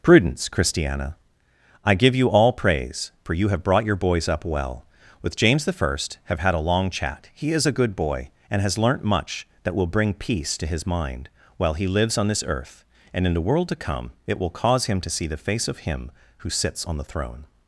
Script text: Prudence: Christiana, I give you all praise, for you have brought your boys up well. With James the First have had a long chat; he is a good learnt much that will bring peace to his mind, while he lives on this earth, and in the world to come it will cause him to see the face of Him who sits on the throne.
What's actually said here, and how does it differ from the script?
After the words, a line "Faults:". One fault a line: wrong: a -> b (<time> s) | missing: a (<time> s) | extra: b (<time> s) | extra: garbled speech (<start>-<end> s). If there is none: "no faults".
Prudence: Christiana, I give you all praise, for you have brought your boys up well. With James the First have had a long chat; he is a good boy, and has learnt much that will bring peace to his mind, while he lives on this earth, and in the world to come it will cause him to see the face of Him who sits on the throne.
Faults:
extra: boy and has (8.0 s)